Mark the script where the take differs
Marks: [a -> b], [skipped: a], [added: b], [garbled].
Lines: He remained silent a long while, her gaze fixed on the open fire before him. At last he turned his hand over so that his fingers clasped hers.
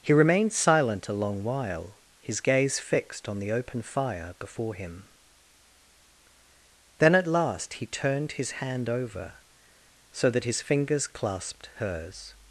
He remained silent a long while, [her -> his] gaze fixed on the open fire before him. [added: Then] At last he turned his hand over so that his fingers clasped hers.